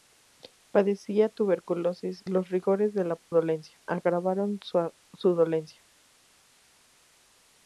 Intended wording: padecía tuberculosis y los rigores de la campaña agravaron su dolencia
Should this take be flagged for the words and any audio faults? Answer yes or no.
yes